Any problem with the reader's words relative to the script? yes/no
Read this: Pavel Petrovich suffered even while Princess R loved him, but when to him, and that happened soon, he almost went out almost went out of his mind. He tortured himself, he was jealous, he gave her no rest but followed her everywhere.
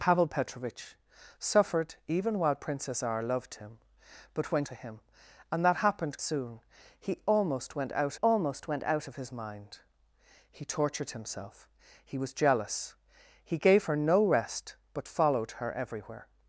no